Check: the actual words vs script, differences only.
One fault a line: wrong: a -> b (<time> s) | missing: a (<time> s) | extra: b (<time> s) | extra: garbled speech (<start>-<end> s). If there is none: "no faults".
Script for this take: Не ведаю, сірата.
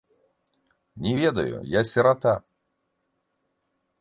extra: я (1.6 s)